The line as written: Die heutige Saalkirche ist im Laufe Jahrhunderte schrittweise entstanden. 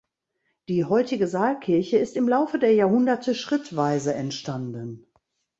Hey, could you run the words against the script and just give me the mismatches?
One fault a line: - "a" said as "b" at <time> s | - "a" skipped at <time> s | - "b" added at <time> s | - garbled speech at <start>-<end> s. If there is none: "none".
- "der" added at 2.6 s